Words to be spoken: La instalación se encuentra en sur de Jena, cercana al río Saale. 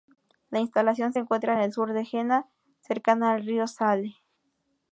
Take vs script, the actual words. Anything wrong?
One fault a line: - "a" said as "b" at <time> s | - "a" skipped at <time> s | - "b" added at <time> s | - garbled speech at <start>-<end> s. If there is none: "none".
- "el" added at 1.6 s